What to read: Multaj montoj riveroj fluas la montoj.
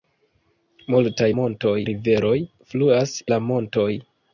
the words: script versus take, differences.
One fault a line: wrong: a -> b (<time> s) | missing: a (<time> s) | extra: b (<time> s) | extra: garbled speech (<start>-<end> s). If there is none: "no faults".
no faults